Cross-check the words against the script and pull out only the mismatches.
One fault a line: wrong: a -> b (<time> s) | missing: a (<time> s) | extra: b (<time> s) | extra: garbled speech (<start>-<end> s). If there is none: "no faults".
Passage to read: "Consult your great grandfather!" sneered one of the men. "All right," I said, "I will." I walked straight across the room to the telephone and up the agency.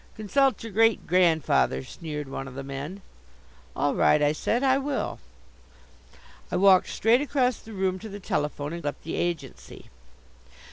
no faults